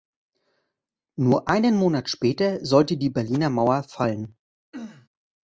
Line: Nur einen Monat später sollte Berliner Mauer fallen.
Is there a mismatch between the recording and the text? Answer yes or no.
yes